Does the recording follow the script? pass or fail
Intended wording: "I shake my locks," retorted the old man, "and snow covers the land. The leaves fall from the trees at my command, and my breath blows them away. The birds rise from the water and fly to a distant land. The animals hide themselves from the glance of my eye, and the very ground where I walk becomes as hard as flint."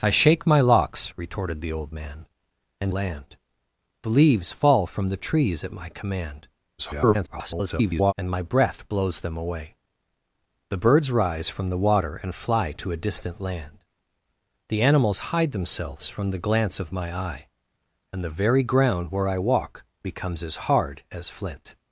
fail